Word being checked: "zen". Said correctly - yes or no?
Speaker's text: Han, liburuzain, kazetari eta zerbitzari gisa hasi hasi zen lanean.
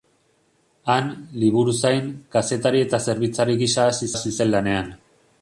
yes